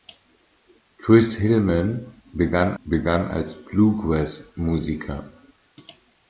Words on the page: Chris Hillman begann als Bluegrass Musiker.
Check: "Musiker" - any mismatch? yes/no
no